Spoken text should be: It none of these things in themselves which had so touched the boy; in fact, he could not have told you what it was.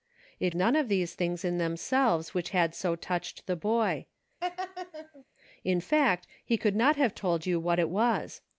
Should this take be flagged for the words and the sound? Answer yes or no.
yes